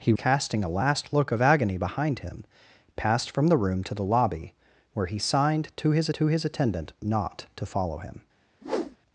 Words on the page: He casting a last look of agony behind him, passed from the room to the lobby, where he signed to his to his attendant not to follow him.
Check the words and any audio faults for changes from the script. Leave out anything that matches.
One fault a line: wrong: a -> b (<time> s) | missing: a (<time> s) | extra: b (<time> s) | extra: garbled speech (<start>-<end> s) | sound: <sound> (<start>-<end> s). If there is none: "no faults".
sound: whoosh (8.6-9.0 s)